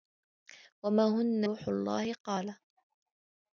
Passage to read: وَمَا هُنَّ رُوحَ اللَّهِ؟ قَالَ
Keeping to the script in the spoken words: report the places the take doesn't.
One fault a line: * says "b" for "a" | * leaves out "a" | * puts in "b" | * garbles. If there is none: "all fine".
all fine